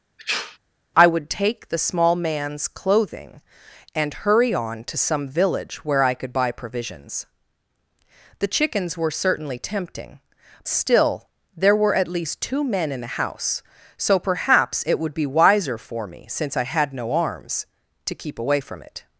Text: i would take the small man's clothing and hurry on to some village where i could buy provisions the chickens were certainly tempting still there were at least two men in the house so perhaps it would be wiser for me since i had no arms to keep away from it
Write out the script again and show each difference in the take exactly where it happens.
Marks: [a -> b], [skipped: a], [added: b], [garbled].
i would take the small man's clothing and hurry on to some village where i could buy provisions the chickens were certainly tempting still there were at least two men in the house so perhaps it would be wiser for me since i had no arms to keep away from it